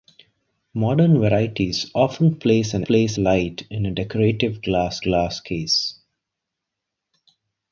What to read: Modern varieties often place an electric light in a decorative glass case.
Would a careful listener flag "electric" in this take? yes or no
yes